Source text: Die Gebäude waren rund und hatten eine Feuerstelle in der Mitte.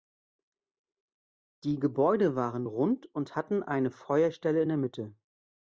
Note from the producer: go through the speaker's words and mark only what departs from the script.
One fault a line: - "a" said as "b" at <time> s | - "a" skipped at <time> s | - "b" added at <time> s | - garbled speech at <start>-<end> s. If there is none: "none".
none